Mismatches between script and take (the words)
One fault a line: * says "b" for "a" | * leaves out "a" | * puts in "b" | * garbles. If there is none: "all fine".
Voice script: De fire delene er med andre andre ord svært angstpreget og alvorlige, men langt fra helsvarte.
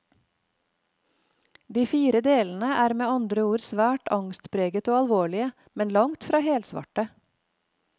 * leaves out "andre"